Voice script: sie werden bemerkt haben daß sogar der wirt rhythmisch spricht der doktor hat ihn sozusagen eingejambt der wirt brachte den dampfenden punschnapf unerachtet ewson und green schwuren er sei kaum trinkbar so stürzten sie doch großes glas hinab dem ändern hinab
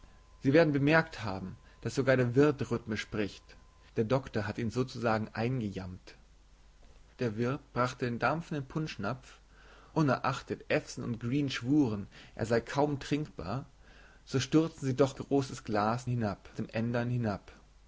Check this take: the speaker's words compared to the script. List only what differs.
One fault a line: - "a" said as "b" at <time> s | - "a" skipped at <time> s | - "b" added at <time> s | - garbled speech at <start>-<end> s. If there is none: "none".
none